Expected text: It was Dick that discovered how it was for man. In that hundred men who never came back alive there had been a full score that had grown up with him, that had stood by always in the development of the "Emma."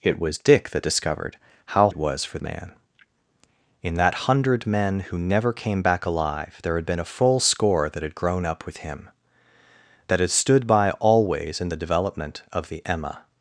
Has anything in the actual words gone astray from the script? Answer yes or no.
no